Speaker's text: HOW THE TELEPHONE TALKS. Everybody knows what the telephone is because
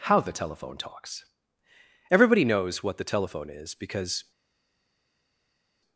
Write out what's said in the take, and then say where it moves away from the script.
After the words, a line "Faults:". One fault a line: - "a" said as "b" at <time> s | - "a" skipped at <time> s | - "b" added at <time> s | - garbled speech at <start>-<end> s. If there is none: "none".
HOW THE TELEPHONE TALKS. Everybody knows what the telephone is because
Faults:
none